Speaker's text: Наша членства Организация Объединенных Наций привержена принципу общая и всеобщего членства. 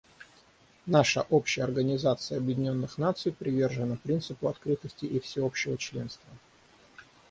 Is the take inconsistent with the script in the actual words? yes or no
yes